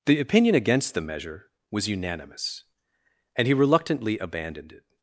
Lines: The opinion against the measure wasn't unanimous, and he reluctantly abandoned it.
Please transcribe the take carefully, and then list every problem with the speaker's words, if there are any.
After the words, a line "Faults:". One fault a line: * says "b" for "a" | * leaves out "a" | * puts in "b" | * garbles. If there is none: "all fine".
The opinion against the measure was unanimous, and he reluctantly abandoned it.
Faults:
* says "was" for "wasn't"